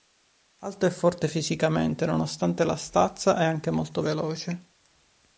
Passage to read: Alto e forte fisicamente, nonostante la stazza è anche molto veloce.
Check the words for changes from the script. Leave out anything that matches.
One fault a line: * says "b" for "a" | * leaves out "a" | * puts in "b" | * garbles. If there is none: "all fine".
all fine